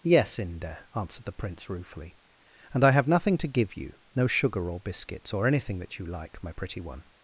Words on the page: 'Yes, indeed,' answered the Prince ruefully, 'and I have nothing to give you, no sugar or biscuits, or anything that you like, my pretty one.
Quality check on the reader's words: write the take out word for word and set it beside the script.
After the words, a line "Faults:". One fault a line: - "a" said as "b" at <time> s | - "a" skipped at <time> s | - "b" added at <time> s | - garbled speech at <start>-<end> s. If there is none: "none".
'Yes, inde,' answered the Prince ruefully, 'and I have nothing to give you, no sugar or biscuits, or anything that you like, my pretty one.
Faults:
- "indeed" said as "inde" at 0.4 s